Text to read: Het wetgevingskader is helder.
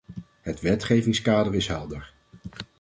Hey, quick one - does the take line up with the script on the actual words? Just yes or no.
yes